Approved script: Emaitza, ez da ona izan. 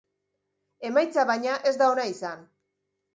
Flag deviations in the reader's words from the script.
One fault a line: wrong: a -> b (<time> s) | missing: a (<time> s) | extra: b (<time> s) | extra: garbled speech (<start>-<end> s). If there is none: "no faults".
extra: baina (1.3 s)